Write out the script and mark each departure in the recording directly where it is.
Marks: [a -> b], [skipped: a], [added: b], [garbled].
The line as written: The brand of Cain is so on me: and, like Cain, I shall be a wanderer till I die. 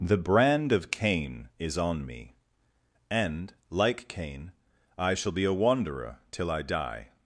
The brand of Cain is [skipped: so] on me: and, like Cain, I shall be a wanderer till I die.